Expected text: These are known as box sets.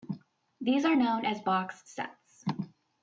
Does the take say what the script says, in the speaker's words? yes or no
yes